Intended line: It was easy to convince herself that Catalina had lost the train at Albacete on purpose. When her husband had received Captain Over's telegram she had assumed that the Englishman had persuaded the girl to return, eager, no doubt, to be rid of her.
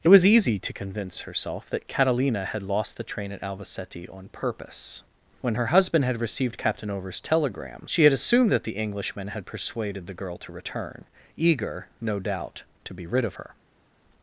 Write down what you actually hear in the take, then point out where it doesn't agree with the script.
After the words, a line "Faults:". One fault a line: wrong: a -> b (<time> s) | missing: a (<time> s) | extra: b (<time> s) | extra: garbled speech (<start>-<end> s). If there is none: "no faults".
It was easy to convince herself that Catalina had lost the train at Albacete on purpose. When her husband had received Captain Over's telegram she had assumed that the Englishman had persuaded the girl to return, eager, no doubt, to be rid of her.
Faults:
no faults